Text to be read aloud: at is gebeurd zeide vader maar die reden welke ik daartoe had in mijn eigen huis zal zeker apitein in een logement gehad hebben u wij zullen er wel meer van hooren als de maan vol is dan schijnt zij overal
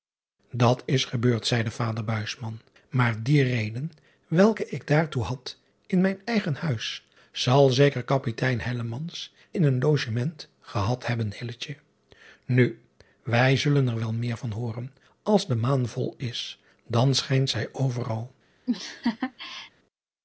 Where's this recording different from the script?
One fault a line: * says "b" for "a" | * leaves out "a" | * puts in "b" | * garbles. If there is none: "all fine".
all fine